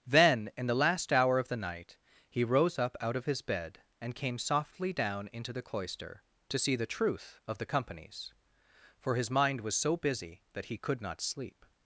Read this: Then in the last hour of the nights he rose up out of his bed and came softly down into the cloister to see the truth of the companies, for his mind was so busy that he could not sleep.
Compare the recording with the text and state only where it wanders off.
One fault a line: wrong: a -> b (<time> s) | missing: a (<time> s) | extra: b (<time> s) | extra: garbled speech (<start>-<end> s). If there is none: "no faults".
wrong: nights -> night (1.6 s)